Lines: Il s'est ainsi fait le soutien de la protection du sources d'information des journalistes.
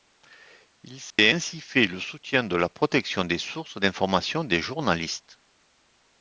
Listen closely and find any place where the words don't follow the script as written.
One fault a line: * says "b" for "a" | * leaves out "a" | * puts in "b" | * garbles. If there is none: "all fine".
* says "des" for "du"